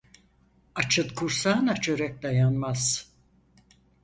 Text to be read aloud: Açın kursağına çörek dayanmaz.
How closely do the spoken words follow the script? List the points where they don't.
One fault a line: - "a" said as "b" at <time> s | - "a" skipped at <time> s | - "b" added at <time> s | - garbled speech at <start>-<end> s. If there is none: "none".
none